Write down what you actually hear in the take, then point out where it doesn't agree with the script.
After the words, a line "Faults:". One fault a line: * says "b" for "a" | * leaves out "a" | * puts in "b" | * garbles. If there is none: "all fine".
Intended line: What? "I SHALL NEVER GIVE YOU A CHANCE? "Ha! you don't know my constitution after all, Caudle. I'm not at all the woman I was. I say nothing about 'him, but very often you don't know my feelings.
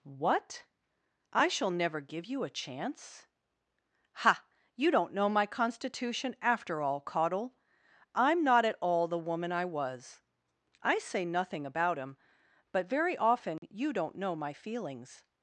What? "I SHALL NEVER GIVE YOU A CHANCE? "Ha! you don't know my constitution after all, Caudle. I'm not at all the woman I was. I say nothing about 'him, but very often you don't know my feelings.
Faults:
all fine